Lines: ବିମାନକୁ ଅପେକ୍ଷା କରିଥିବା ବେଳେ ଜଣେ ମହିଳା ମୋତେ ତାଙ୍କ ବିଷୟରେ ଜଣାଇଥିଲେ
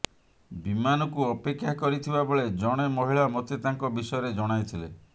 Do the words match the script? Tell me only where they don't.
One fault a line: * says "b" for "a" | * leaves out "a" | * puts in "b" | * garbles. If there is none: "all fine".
all fine